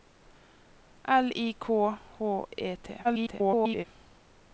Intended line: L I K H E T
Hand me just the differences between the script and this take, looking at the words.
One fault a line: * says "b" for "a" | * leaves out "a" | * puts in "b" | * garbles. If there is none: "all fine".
* garbles